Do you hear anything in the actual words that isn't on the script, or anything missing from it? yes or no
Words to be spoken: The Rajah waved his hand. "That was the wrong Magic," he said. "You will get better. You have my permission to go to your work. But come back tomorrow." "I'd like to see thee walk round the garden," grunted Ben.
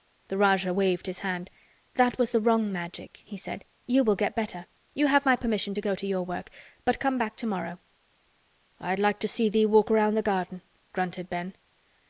no